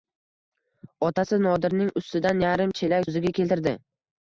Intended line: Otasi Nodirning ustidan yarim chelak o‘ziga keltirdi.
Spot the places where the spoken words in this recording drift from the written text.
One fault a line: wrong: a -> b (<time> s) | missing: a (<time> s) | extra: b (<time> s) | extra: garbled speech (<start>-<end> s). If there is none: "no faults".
no faults